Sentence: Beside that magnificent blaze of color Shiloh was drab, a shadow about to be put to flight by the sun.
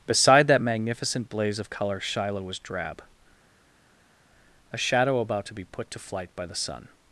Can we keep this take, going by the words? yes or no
yes